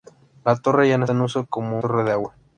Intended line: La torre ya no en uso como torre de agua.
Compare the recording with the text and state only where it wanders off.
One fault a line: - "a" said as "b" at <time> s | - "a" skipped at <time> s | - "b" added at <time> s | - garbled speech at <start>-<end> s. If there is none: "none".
none